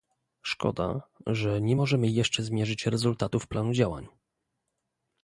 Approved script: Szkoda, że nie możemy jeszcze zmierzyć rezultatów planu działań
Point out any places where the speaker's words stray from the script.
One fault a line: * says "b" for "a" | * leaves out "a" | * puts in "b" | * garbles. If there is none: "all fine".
all fine